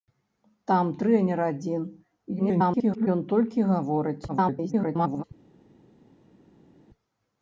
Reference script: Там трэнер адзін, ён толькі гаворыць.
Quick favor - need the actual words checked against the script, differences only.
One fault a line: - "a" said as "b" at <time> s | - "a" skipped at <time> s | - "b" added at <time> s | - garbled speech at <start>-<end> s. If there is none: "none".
- garbled speech at 2.4-3.1 s
- garbled speech at 4.3-5.2 s